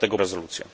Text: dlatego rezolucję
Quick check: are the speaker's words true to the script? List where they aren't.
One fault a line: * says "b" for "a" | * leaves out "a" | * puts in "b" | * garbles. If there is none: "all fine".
all fine